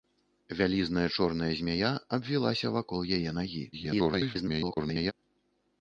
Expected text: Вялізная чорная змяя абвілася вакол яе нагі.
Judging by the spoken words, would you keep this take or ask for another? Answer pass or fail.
fail